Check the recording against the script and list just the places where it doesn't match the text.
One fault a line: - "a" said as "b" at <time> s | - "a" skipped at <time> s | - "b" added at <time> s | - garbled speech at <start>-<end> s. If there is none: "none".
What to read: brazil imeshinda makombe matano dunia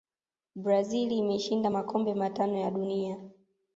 - "ya" added at 2.6 s